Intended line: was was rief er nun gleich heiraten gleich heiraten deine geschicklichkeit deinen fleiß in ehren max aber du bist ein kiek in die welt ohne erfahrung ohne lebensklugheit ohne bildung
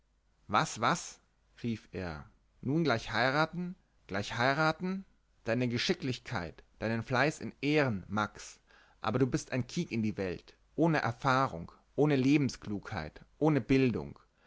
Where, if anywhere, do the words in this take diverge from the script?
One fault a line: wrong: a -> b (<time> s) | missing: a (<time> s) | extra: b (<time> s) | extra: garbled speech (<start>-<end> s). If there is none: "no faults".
no faults